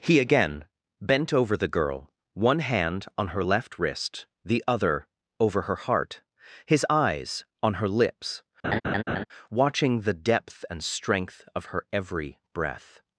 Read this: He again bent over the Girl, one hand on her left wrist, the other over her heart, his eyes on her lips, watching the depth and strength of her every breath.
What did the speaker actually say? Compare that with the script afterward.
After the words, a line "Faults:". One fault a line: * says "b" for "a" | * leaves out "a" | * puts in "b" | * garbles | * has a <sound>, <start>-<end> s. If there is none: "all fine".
He again bent over the Girl, one hand on her left wrist, the other over her heart, his eyes on her lips, watching the depth and strength of her every breath.
Faults:
* has a laugh, 8.6-9.2 s